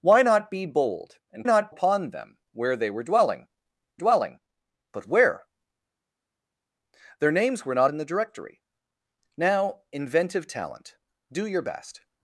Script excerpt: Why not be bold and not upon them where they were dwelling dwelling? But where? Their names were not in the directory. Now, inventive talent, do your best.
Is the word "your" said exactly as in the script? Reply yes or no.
yes